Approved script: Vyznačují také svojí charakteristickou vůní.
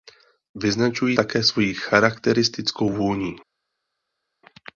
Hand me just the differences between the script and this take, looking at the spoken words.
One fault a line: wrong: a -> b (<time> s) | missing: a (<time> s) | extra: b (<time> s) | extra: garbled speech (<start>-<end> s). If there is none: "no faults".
no faults